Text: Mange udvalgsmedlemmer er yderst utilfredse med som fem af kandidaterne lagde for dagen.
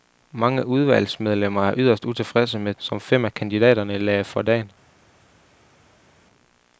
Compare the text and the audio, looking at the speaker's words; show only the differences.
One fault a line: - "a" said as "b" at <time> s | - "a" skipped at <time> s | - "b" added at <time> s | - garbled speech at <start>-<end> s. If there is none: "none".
none